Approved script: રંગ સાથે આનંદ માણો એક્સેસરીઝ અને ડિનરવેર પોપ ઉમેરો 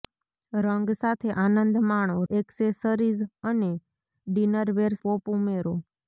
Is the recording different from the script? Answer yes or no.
no